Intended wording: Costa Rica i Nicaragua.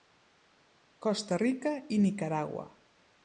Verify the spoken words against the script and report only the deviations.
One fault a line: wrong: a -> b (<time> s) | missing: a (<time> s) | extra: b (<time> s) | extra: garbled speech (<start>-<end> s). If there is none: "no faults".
no faults